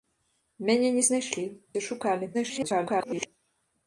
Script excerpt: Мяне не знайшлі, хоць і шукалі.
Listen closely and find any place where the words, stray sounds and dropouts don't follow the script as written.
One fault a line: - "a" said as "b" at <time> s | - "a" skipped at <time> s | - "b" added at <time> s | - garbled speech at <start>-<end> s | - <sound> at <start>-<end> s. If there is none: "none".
- "хоць" skipped at 1.4 s
- garbled speech at 2.3-3.3 s